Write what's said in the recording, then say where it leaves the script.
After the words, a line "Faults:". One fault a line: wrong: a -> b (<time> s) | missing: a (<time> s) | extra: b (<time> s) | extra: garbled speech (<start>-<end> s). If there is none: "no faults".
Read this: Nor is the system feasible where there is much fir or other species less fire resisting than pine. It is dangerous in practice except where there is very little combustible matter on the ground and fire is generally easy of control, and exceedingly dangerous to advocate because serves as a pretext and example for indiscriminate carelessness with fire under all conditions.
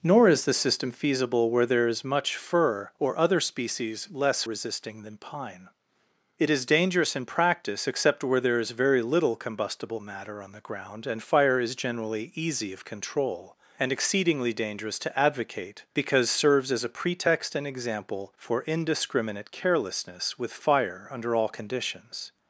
Nor is the system feasible where there is much fir or other species less resisting than pine. It is dangerous in practice except where there is very little combustible matter on the ground and fire is generally easy of control, and exceedingly dangerous to advocate because serves as a pretext and example for indiscriminate carelessness with fire under all conditions.
Faults:
missing: fire (4.4 s)